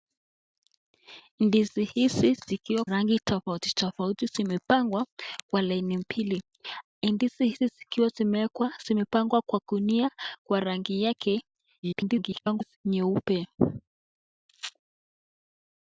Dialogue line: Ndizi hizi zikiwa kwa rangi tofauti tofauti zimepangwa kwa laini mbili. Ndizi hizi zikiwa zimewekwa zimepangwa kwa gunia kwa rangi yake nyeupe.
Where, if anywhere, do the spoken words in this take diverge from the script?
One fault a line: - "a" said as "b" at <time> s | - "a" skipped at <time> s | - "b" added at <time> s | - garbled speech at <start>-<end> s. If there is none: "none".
- "kwa" skipped at 2.9 s
- garbled speech at 11.8-12.8 s